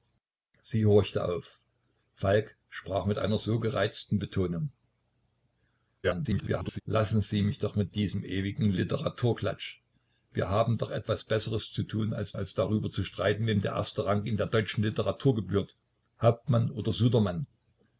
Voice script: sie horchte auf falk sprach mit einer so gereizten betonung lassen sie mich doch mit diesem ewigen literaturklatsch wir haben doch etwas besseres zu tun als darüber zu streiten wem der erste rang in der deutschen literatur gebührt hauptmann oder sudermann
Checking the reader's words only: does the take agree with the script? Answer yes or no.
no